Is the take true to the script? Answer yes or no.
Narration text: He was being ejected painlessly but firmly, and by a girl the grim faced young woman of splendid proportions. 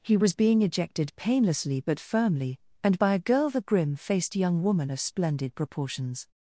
yes